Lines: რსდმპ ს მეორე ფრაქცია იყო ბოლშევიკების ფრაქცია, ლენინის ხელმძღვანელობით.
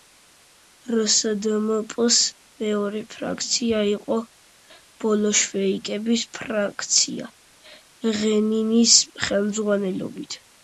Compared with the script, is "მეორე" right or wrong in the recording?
right